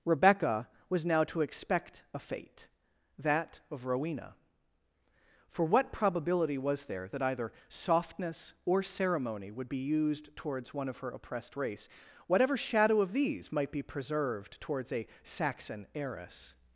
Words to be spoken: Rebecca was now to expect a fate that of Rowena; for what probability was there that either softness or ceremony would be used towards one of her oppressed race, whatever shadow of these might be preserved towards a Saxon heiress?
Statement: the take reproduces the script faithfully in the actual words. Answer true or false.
true